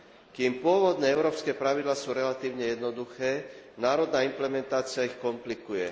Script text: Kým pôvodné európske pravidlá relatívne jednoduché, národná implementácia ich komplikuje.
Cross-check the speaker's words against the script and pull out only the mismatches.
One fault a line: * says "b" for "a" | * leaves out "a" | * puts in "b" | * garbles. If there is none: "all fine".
* puts in "sú"